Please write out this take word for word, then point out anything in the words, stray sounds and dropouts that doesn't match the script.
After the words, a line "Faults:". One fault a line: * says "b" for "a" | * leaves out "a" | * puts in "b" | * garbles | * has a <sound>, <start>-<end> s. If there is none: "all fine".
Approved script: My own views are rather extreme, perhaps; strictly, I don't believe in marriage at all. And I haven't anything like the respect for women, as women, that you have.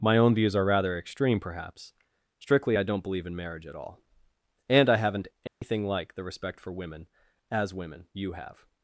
My own views are rather extreme, perhaps; strictly, I don't believe in marriage at all. And I haven't anything like the respect for women, as women, you have.
Faults:
* has a dropout, 5.5-5.6 s
* leaves out "that"